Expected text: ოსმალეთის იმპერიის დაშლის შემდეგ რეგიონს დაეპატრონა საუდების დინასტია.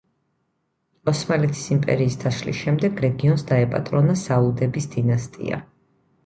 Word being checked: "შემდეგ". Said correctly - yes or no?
yes